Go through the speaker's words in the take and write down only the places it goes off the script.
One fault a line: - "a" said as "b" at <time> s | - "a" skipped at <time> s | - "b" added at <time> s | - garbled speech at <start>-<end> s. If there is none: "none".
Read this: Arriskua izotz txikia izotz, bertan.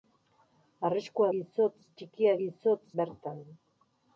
none